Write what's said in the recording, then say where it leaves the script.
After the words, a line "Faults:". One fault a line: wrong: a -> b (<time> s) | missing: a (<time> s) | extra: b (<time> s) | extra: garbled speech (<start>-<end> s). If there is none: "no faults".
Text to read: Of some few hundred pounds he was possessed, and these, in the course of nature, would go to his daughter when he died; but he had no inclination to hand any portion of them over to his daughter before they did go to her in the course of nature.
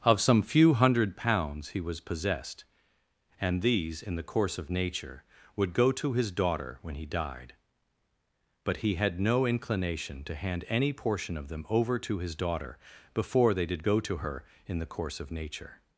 Of some few hundred pounds he was possessed, and these, in the course of nature, would go to his daughter when he died; but he had no inclination to hand any portion of them over to his daughter before they did go to her in the course of nature.
Faults:
no faults